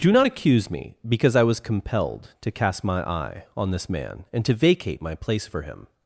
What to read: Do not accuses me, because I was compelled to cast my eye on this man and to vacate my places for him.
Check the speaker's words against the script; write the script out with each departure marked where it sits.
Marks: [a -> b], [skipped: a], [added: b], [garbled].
Do not [accuses -> accuse] me, because I was compelled to cast my eye on this man and to vacate my [places -> place] for him.